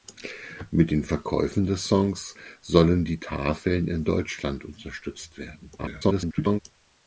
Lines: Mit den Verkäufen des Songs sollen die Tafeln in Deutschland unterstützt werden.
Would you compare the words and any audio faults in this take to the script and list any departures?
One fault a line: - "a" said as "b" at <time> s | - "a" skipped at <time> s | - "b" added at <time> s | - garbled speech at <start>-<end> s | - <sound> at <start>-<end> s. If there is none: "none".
- garbled speech at 5.8-6.6 s